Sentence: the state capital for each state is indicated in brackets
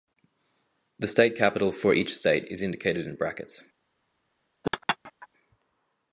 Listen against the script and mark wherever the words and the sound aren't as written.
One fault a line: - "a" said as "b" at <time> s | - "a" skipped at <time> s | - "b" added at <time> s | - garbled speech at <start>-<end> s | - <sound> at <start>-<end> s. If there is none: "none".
- laugh at 4.6-5.3 s